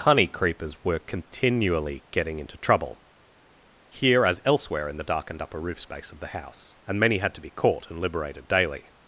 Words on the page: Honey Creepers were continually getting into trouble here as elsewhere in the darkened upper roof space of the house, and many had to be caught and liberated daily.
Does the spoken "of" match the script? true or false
true